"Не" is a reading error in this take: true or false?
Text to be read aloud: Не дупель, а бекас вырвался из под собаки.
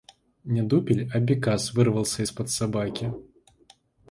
false